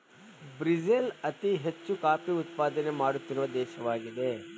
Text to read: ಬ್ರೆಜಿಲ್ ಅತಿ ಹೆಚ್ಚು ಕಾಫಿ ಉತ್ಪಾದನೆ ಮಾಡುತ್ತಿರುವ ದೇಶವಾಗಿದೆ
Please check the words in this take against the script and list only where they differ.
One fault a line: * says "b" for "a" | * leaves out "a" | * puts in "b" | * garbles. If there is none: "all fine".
all fine